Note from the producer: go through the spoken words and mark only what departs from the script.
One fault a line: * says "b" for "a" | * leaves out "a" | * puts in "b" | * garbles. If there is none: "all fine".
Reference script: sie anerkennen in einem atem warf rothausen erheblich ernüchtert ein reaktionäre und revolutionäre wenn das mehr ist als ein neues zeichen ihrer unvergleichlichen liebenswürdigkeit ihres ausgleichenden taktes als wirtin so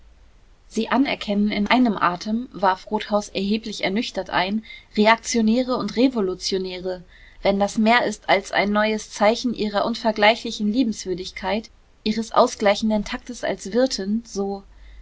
all fine